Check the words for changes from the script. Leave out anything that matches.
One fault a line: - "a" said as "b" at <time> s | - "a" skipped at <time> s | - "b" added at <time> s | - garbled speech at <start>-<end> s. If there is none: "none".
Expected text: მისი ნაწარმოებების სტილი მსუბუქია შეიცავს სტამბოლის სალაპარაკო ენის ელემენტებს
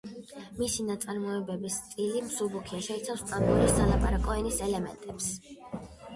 none